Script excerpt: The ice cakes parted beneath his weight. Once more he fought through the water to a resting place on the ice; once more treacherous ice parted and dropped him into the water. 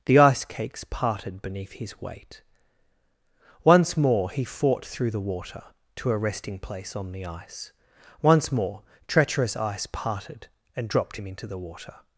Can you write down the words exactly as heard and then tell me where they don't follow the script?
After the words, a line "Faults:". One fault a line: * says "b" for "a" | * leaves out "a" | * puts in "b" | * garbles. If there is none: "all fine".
The ice cakes parted beneath his weight. Once more he fought through the water to a resting place on the ice; once more treacherous ice parted and dropped him into the water.
Faults:
all fine